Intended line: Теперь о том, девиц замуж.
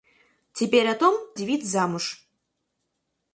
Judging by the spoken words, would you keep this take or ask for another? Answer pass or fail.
pass